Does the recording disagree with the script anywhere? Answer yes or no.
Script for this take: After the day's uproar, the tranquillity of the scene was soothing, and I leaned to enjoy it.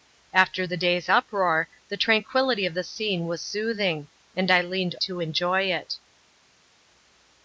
no